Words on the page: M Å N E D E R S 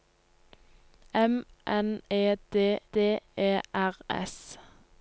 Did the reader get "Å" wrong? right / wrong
wrong